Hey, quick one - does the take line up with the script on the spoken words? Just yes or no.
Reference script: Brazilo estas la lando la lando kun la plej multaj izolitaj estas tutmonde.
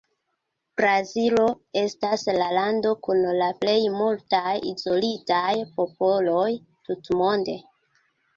no